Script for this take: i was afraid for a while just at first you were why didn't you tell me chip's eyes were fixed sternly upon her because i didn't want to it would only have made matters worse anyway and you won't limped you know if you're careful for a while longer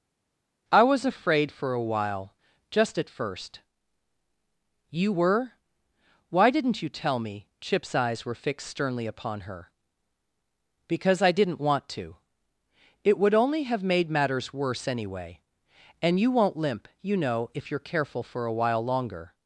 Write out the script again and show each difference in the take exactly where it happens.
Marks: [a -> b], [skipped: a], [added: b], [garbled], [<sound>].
i was afraid for a while just at first you were why didn't you tell me chip's eyes were fixed sternly upon her because i didn't want to it would only have made matters worse anyway and you won't [limped -> limp] you know if you're careful for a while longer